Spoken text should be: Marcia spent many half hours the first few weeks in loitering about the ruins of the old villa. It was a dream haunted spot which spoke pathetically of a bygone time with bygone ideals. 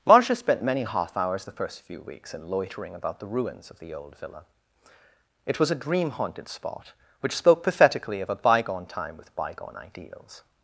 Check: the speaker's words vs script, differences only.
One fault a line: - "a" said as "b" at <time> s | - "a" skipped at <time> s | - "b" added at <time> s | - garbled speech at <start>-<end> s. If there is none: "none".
none